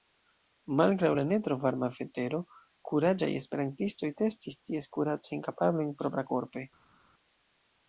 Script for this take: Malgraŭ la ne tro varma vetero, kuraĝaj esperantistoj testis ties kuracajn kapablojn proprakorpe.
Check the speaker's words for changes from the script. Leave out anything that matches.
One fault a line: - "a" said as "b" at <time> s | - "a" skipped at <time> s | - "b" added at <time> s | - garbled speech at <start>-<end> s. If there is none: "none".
none